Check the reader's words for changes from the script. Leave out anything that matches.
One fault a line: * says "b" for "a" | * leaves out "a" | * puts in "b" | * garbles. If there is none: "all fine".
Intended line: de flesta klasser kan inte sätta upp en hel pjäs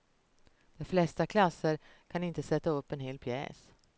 all fine